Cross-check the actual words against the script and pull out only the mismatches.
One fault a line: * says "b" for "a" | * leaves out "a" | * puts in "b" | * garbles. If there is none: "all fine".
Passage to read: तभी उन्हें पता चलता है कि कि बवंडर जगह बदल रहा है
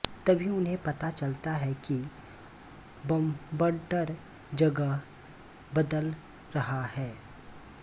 * leaves out "कि"